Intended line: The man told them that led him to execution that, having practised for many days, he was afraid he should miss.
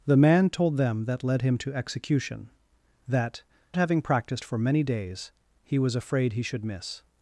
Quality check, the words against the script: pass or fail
pass